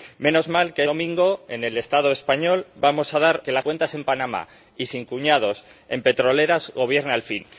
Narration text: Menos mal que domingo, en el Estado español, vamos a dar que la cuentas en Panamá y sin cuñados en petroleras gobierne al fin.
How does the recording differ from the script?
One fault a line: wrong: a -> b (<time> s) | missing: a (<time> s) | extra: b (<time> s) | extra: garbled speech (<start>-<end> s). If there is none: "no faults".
no faults